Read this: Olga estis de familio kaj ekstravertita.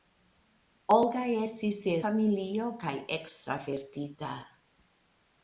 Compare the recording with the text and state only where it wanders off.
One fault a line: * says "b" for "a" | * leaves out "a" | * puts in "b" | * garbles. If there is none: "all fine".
all fine